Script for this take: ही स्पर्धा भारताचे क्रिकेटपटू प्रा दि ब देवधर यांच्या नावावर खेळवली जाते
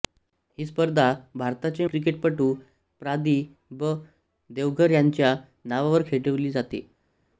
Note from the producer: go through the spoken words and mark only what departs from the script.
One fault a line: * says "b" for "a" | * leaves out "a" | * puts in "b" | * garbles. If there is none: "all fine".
all fine